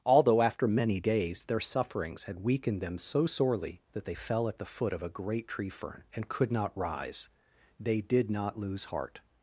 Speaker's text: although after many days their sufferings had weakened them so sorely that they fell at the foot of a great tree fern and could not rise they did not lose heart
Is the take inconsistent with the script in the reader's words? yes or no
no